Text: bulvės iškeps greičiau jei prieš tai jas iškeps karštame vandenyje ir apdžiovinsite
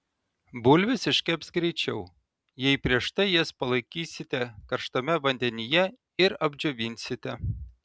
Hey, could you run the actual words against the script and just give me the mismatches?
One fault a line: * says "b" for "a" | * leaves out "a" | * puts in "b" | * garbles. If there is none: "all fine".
* says "palaikysite" for "iškeps"